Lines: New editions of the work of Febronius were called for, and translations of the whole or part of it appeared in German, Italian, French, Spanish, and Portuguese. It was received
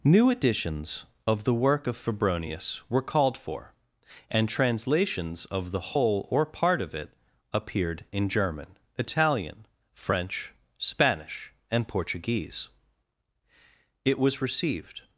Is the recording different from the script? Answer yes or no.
no